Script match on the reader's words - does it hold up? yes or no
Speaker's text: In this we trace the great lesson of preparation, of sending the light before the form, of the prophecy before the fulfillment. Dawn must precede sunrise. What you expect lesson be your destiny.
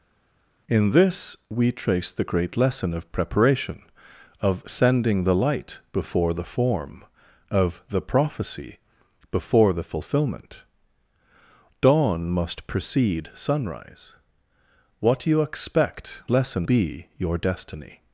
yes